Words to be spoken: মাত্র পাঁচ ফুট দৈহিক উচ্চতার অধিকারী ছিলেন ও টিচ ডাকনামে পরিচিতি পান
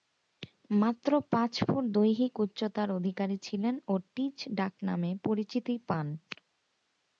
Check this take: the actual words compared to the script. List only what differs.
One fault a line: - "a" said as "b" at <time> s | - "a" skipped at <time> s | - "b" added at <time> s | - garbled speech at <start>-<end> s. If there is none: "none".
none